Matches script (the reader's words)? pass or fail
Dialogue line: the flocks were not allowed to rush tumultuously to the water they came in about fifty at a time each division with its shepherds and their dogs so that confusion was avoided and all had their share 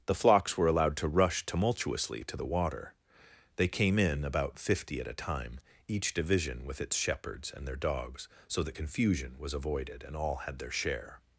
fail